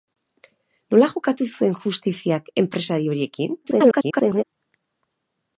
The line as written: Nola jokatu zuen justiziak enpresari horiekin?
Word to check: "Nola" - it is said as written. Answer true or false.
true